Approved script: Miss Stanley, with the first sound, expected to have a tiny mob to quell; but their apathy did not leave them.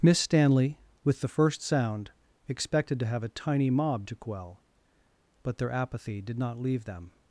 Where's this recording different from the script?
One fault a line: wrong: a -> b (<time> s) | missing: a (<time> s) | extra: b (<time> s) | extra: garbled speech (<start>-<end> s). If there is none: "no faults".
no faults